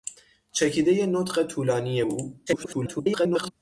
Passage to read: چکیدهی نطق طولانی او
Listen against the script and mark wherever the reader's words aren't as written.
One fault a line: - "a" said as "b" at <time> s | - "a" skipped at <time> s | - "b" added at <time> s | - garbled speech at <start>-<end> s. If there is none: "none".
- garbled speech at 2.5-3.5 s